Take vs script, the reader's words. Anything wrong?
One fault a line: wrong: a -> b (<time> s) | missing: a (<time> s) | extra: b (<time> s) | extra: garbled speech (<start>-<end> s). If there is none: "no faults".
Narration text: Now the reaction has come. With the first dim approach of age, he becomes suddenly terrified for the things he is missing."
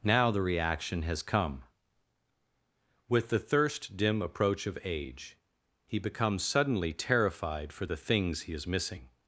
wrong: first -> thirst (3.4 s)